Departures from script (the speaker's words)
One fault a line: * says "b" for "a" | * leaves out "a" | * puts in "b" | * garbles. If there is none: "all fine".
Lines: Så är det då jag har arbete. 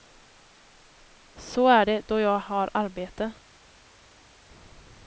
all fine